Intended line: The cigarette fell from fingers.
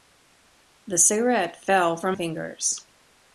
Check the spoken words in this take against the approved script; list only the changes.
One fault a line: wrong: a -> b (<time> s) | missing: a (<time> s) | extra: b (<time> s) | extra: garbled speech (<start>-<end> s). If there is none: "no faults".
no faults